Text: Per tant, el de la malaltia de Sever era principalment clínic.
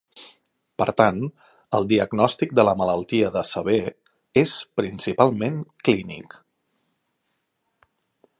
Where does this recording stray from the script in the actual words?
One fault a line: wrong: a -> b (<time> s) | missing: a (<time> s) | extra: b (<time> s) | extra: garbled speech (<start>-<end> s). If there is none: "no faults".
extra: diagnòstic (1.9 s)
wrong: era -> és (4.4 s)